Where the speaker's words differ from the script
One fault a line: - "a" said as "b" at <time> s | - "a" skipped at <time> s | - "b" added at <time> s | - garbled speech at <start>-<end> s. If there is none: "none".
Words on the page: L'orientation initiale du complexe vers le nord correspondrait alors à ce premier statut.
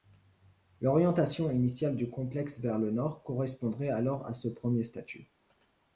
none